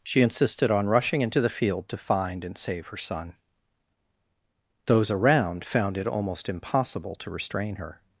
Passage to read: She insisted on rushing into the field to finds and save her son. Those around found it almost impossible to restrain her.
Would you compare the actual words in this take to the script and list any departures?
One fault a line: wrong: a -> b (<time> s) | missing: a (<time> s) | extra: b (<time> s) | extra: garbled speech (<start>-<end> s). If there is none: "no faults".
wrong: finds -> find (2.0 s)